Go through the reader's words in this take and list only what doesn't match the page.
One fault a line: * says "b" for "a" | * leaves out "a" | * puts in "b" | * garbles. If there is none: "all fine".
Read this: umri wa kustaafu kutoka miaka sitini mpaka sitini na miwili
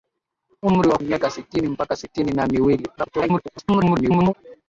* leaves out "kustaafu kutoka"
* garbles